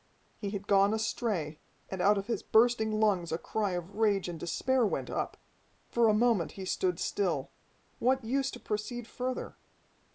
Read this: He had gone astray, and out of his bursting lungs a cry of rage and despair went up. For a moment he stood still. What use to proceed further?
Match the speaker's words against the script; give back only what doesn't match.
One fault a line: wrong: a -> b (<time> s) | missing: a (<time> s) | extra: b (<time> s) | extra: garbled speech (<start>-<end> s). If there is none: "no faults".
no faults